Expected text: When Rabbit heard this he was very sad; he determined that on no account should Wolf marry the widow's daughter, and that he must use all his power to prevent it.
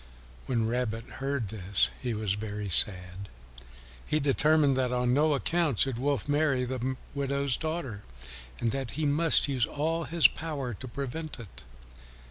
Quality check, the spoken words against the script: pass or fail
pass